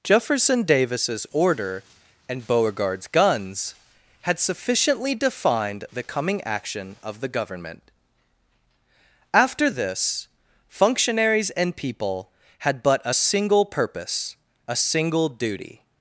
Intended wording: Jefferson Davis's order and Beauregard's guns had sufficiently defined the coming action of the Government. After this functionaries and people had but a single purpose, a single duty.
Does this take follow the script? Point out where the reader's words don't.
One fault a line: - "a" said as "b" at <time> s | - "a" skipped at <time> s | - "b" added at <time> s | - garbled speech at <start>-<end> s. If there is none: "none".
none